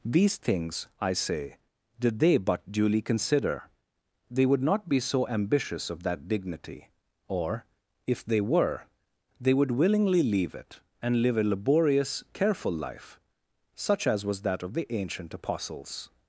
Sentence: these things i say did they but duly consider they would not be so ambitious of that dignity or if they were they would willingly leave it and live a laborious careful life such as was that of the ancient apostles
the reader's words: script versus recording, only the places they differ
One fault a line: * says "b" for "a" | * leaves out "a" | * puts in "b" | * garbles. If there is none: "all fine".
all fine